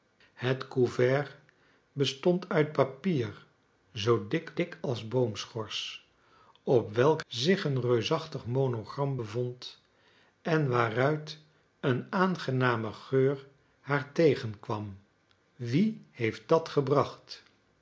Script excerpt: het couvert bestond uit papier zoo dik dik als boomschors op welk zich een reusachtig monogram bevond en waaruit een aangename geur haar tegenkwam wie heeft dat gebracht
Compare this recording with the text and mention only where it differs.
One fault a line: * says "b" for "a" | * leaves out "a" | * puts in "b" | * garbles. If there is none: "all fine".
all fine